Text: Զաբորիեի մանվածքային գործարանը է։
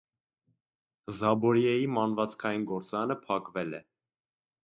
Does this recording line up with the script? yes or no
no